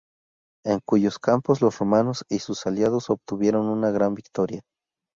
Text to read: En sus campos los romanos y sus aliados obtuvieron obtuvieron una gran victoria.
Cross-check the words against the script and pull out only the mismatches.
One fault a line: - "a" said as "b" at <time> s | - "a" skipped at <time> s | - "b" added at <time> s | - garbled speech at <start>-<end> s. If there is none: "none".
- "sus" said as "cuyos" at 0.8 s
- "obtuvieron" skipped at 3.6 s